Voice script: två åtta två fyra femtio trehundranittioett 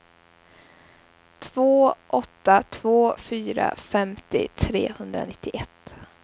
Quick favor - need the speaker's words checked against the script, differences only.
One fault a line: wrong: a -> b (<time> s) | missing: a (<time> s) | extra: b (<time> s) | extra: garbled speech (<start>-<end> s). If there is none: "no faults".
no faults